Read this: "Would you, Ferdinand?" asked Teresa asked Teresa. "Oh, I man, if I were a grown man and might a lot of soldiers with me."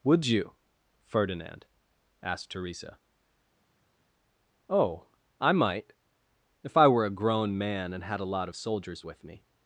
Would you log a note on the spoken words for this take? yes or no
yes